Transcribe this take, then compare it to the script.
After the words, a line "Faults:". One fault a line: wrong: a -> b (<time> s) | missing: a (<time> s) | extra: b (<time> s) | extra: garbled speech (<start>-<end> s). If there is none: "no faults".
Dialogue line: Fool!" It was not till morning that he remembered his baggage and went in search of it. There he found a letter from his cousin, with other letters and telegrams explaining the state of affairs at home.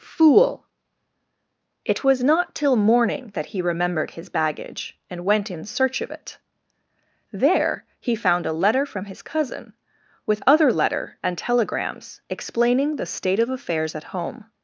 Fool!" It was not till morning that he remembered his baggage and went in search of it. There he found a letter from his cousin, with other letter and telegrams explaining the state of affairs at home.
Faults:
wrong: letters -> letter (10.7 s)